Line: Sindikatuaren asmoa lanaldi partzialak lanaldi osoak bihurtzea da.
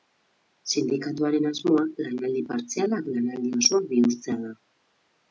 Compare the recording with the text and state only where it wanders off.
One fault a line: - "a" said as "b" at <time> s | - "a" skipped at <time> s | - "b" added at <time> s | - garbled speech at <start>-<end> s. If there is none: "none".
none